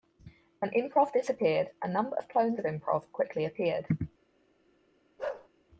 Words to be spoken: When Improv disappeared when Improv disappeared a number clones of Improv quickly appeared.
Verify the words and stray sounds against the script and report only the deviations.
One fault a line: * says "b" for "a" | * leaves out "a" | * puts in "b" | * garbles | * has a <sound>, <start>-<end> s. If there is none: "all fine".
* leaves out "when Improv disappeared"
* puts in "of"
* has a bark, 5.2-5.5 s